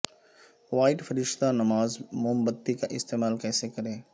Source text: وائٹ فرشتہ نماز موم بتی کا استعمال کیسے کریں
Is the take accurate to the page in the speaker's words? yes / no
yes